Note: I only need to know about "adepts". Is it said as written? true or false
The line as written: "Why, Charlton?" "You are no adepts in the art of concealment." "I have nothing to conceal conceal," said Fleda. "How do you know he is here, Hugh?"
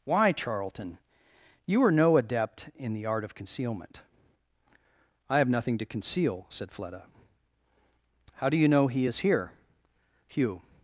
false